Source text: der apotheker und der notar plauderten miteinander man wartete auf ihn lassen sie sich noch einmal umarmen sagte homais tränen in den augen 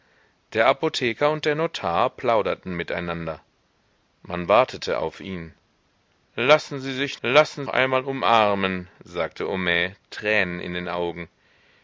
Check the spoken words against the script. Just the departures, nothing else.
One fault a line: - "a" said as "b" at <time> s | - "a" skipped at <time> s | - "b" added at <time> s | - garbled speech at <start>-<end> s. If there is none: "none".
- "noch" said as "lassen" at 7.2 s